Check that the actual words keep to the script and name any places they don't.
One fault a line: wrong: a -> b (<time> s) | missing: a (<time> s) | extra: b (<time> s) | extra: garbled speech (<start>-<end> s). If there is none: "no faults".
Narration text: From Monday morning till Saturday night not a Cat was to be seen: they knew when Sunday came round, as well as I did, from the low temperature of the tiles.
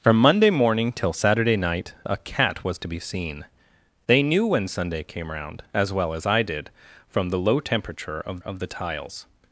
missing: not (1.9 s)
extra: of (8.4 s)